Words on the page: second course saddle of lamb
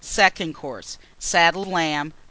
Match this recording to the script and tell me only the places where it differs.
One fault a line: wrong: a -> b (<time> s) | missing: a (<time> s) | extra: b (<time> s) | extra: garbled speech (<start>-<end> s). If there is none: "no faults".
missing: of (1.7 s)